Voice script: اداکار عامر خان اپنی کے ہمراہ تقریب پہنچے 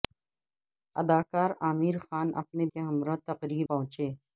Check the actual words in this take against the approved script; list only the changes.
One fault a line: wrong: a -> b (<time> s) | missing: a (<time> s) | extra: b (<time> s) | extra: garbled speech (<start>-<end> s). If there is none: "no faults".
no faults